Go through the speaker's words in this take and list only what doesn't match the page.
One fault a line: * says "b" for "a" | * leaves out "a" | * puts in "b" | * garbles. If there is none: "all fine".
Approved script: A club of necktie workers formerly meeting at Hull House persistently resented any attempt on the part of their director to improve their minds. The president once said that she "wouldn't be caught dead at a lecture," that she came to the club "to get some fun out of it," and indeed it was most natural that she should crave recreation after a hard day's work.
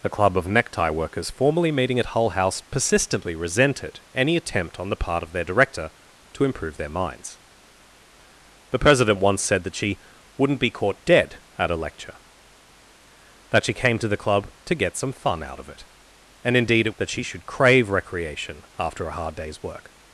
* leaves out "was most natural"